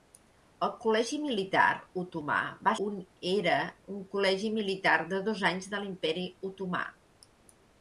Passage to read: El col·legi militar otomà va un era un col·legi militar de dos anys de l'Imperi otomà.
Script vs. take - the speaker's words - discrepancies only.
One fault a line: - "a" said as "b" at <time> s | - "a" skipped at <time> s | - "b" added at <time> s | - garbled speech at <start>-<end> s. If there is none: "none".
none